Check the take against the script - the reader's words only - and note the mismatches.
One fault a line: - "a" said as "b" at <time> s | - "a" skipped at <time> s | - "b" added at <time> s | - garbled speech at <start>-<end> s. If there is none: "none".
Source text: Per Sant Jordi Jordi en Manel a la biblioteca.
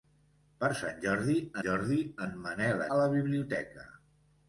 none